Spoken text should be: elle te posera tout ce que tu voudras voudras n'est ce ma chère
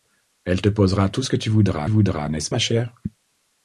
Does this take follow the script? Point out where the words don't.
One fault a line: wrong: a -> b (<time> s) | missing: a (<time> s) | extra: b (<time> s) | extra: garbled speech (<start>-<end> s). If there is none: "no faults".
no faults